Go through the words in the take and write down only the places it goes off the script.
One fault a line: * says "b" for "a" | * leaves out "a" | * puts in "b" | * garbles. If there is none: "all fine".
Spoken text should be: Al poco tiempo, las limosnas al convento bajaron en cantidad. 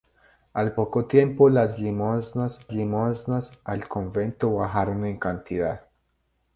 * puts in "limosnas"